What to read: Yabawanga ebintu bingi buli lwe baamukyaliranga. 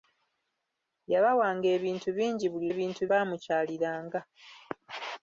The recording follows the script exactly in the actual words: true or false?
false